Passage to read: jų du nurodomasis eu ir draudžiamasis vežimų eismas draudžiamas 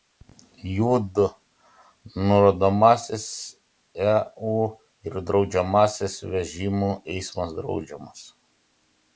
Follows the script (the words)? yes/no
yes